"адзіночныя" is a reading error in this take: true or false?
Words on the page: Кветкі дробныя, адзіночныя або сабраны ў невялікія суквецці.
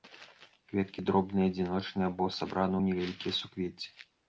false